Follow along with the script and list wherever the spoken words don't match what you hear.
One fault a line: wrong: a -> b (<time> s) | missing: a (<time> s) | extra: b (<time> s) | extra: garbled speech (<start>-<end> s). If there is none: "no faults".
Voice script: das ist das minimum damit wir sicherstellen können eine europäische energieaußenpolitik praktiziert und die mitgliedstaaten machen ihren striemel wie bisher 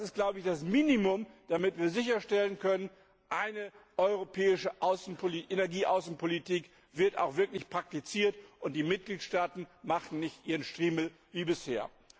extra: wird auch wirklich (6.9 s)
extra: nicht (10.2 s)